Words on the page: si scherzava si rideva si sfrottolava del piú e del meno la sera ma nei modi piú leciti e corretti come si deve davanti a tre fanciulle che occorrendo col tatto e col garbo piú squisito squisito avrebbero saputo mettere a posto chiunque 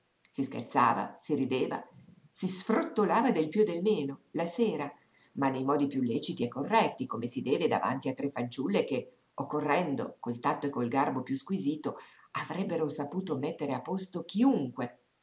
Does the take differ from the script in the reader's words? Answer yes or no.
yes